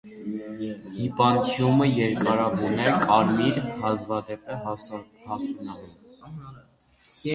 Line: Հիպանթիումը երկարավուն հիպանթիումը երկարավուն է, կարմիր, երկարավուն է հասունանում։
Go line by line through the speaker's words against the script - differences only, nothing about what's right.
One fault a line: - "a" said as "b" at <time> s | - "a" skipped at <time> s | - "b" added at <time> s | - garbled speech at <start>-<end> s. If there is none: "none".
- "հիպանթիումը երկարավուն" skipped at 2.7 s
- "երկարավուն" said as "հազվադեպ" at 3.8 s